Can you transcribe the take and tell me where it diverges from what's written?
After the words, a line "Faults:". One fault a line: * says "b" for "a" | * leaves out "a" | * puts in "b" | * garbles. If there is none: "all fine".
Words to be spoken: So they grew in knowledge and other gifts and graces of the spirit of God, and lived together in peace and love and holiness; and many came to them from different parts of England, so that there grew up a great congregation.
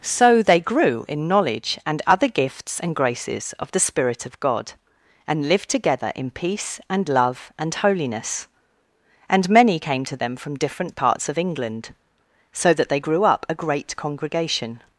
So they grew in knowledge and other gifts and graces of the spirit of God, and lived together in peace and love and holiness; and many came to them from different parts of England, so that they grew up a great congregation.
Faults:
* says "they" for "there"